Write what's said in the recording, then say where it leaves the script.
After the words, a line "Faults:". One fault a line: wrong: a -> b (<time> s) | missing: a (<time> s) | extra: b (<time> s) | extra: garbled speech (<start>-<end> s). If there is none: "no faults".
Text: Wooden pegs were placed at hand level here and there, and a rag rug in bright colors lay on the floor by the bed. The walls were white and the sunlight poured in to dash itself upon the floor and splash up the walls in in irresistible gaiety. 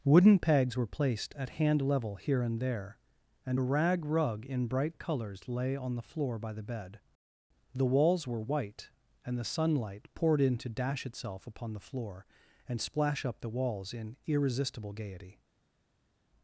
Wooden pegs were placed at hand level here and there, and a rag rug in bright colors lay on the floor by the bed. The walls were white and the sunlight poured in to dash itself upon the floor and splash up the walls in irresistible gaiety.
Faults:
missing: in (14.2 s)